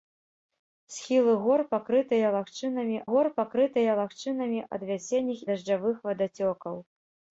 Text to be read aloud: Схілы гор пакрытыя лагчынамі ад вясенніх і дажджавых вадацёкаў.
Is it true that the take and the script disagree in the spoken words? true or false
true